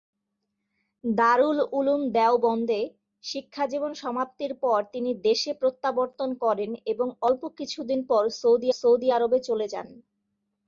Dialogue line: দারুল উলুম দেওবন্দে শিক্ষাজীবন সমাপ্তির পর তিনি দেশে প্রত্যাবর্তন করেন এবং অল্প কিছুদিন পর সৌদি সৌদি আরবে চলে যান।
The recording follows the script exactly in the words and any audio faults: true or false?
true